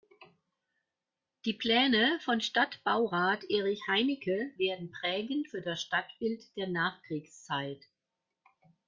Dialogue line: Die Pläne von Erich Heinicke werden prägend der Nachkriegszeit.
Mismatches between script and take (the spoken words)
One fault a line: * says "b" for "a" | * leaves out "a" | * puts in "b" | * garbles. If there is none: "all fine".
* puts in "Stadtbaurat"
* puts in "für das Stadtbild"